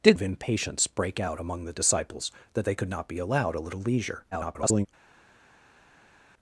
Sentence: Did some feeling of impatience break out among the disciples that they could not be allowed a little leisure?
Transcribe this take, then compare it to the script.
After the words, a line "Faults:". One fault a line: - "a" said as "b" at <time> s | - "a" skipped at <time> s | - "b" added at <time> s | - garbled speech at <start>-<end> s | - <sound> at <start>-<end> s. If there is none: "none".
Did of impatience break out among the disciples that they could not be allowed a little leisure? [garbled]
Faults:
- "some feeling" skipped at 0.2 s
- garbled speech at 4.3-4.9 s